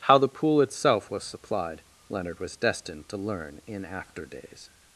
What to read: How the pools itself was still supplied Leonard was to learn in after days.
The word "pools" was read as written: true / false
false